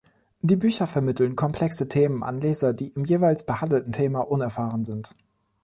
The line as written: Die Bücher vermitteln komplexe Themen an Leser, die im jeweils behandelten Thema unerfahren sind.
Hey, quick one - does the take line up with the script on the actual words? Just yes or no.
yes